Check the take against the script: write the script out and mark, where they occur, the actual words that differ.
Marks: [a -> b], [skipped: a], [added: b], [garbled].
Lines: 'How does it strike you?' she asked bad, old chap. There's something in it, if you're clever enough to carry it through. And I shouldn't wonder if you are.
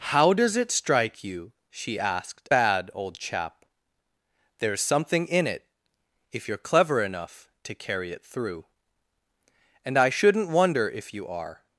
'How does it strike you?' she asked bad, old chap. There's something in it, if you're clever enough to carry it through. And I shouldn't wonder if you are.